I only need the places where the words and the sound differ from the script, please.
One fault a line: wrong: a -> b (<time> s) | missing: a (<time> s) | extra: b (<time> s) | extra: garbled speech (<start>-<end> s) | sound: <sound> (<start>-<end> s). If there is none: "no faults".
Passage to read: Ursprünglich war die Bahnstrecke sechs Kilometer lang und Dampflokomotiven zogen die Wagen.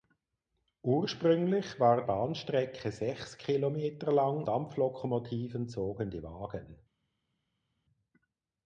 missing: die (2.0 s)
missing: und (4.4 s)